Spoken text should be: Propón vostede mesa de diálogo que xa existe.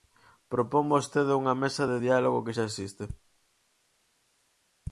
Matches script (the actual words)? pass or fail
fail